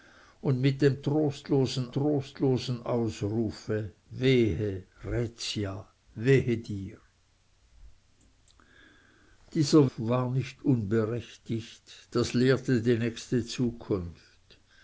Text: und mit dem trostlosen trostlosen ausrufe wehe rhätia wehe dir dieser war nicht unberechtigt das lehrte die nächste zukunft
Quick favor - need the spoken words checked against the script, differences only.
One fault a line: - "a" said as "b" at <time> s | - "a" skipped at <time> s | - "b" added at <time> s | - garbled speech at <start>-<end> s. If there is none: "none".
none